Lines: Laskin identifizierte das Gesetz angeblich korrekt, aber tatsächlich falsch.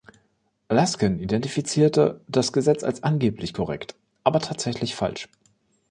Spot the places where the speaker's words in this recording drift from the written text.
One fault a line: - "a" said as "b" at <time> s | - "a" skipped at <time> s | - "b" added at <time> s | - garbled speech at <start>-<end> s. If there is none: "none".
- "als" added at 2.8 s